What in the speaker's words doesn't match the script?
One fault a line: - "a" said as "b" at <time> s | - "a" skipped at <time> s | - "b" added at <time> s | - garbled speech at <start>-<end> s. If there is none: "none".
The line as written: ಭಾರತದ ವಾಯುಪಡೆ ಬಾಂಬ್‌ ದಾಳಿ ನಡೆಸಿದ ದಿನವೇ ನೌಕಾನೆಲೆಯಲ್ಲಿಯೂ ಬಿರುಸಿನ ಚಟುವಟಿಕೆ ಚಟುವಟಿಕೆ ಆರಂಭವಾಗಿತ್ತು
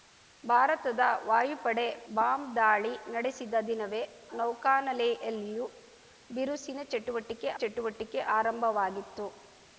none